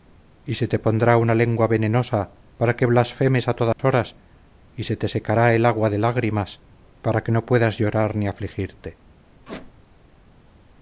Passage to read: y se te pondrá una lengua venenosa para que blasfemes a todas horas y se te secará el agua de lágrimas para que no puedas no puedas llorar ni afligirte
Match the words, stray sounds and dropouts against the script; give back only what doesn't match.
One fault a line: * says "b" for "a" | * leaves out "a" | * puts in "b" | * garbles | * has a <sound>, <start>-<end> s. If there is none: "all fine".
* has a dropout, 3.7-3.8 s
* leaves out "no puedas"
* has a squeak, 9.5-9.7 s